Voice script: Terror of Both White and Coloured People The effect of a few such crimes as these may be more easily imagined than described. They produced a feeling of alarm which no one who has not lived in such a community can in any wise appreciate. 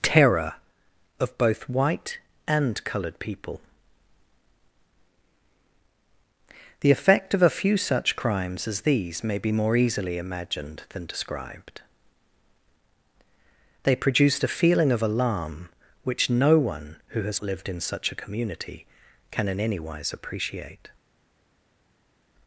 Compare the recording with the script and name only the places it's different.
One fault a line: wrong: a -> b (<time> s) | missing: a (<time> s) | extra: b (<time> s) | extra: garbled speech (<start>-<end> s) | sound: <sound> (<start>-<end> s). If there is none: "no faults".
missing: not (17.4 s)